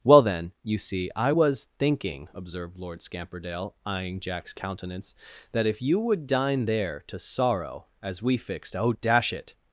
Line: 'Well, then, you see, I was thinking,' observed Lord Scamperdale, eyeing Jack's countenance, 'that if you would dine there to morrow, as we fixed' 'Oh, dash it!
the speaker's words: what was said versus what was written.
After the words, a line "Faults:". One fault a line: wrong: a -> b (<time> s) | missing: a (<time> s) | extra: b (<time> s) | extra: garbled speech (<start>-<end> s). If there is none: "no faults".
'Well, then, you see, I was thinking,' observed Lord Scamperdale, eyeing Jack's countenance, 'that if you would dine there to sorrow, as we fixed' 'Oh, dash it!
Faults:
wrong: morrow -> sorrow (7.2 s)